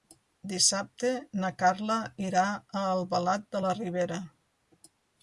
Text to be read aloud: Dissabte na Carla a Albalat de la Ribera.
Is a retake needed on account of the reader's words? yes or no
yes